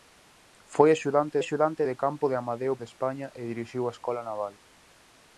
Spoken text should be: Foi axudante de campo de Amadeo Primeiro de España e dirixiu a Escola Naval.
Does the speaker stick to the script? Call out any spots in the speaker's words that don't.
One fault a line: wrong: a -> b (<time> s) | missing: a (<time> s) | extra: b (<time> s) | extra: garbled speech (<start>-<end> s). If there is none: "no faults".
extra: axudante (1.4 s)
missing: Primeiro (2.7 s)